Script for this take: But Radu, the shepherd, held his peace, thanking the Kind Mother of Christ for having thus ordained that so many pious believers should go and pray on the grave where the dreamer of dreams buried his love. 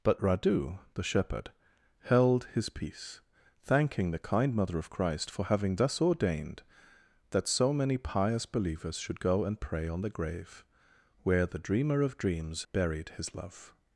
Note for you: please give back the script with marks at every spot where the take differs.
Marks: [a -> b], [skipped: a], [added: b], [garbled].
But Radu, the shepherd, held his peace, thanking the Kind Mother of Christ for having thus ordained that so many pious believers should go and pray on the grave where the dreamer of dreams buried his love.